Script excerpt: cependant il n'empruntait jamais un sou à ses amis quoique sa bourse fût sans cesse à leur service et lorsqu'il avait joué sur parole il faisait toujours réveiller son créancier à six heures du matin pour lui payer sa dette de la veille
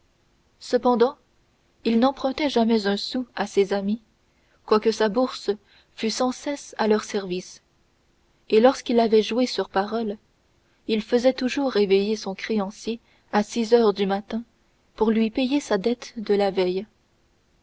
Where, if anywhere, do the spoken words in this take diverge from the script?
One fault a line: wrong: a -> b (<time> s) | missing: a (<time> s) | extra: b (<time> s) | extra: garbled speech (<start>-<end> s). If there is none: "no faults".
no faults